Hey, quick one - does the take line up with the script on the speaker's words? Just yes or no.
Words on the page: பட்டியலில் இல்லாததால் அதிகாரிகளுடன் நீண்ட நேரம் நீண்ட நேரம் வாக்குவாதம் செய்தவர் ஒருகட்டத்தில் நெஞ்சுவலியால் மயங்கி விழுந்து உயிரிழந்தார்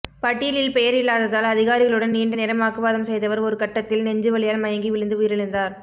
no